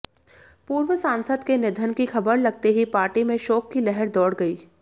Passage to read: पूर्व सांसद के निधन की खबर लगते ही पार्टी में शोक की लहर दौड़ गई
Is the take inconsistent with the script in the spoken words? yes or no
no